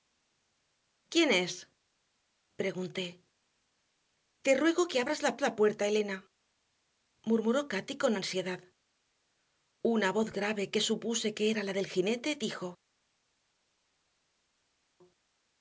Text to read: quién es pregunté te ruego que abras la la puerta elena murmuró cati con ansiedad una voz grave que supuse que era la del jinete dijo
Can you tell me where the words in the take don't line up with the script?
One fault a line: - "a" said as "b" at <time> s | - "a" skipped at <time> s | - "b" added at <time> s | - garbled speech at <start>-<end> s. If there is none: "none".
none